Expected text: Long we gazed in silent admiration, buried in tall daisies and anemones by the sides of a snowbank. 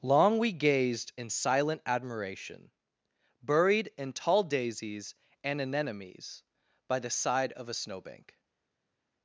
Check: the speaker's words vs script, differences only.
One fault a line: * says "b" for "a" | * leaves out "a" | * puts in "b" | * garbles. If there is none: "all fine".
* says "side" for "sides"